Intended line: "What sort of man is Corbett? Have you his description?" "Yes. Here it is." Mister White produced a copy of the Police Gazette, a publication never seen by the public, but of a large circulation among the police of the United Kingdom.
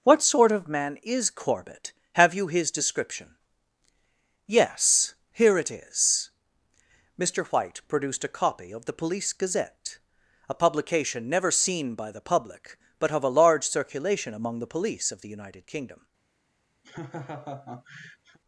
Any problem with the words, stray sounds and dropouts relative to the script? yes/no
yes